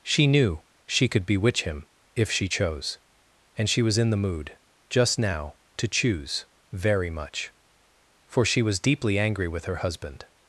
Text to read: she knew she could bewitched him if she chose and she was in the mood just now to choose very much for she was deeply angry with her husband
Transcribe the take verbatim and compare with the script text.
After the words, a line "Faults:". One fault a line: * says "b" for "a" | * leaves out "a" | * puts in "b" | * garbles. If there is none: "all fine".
she knew she could bewitch him if she chose and she was in the mood just now to choose very much for she was deeply angry with her husband
Faults:
* says "bewitch" for "bewitched"